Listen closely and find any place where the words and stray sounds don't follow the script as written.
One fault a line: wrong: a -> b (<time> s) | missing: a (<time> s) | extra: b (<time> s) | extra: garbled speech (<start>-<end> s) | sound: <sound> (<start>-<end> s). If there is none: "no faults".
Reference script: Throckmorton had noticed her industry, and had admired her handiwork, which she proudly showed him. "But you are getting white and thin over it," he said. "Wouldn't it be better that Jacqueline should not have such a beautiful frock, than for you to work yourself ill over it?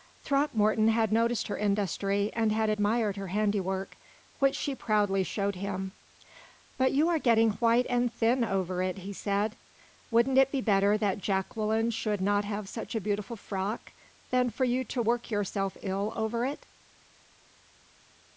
no faults